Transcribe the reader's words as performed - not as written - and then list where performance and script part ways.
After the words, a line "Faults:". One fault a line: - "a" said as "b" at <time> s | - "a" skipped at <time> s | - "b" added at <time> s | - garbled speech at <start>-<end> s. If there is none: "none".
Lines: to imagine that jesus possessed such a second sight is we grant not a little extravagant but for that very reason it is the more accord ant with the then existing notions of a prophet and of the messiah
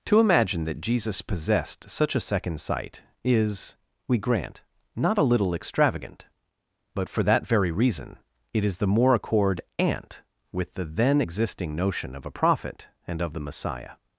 to imagine that jesus possessed such a second sight is we grant not a little extravagant but for that very reason it is the more accord ant with the then existing notion of a prophet and of the messiah
Faults:
- "notions" said as "notion" at 11.7 s